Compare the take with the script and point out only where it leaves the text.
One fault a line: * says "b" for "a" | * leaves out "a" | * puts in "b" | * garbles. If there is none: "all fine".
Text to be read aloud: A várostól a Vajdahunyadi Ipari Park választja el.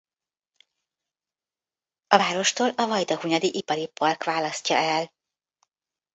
all fine